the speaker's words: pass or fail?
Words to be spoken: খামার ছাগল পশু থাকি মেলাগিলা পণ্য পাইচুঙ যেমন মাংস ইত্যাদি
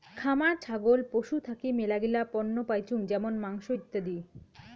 pass